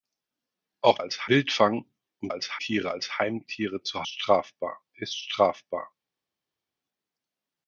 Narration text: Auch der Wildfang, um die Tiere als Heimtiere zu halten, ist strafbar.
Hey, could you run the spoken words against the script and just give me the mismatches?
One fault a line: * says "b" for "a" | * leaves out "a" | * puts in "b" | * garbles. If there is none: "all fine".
* says "als" for "der"
* says "als" for "die"
* says "strafbar" for "halten"